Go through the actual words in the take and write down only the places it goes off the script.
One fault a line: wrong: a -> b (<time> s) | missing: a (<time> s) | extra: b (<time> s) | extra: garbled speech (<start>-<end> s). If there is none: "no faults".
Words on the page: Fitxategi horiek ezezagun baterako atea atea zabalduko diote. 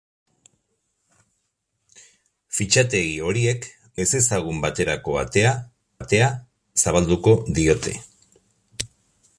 no faults